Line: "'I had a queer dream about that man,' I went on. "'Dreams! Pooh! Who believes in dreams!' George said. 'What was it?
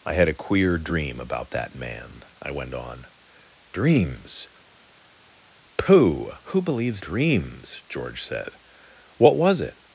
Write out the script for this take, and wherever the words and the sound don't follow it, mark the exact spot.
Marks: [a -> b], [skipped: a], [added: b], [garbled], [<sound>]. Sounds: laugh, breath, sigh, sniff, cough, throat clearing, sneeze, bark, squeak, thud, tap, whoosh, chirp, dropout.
"'I had a queer dream about that man,' I went on. "'Dreams! Pooh! Who believes [skipped: in] dreams!' George said. 'What was it?